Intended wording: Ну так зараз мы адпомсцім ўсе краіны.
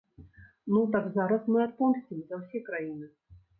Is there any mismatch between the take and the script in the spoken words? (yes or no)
yes